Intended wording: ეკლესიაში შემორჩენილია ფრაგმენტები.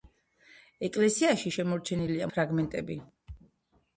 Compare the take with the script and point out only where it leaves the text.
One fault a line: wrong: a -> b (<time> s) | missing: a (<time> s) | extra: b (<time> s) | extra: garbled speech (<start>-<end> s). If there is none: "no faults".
no faults